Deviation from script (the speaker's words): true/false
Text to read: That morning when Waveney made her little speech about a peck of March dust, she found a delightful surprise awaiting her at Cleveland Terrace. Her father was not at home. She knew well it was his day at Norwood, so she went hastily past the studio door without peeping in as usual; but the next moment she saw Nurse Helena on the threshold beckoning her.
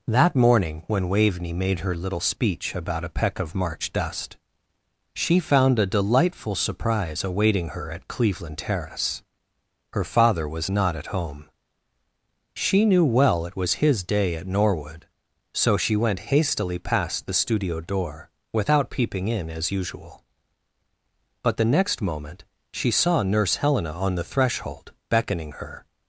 false